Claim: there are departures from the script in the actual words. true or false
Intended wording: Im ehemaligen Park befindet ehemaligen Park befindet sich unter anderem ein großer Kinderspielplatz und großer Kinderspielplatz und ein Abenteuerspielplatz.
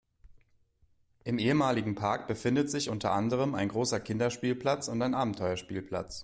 true